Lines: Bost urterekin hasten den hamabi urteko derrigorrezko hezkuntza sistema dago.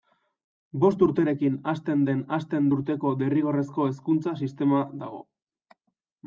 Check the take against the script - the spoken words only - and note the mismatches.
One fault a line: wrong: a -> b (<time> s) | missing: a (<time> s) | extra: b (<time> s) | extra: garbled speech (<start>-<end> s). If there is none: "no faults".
wrong: hamabi -> hasten (2.4 s)